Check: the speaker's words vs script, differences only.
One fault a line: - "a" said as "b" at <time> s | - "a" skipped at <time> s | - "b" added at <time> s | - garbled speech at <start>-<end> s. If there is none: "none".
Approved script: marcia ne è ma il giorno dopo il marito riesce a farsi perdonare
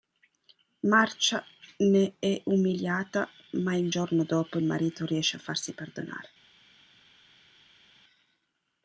- "umiliata" added at 2.5 s